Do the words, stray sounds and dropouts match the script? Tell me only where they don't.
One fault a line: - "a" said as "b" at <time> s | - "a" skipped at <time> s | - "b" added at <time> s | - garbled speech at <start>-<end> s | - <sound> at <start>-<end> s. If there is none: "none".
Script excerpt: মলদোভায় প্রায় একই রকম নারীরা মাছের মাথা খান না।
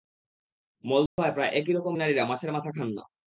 - dropout at 1.1-1.2 s